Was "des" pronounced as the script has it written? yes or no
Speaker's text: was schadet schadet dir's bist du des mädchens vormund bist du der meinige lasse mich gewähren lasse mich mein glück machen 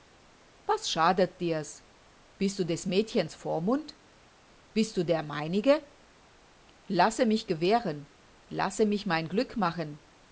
yes